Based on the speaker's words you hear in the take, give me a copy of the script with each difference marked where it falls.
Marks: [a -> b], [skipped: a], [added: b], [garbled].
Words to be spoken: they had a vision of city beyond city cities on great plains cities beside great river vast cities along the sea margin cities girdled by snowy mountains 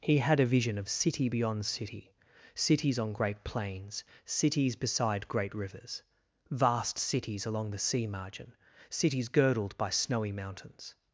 [they -> he] had a vision of city beyond city cities on great plains cities beside great [river -> rivers] vast cities along the sea margin cities girdled by snowy mountains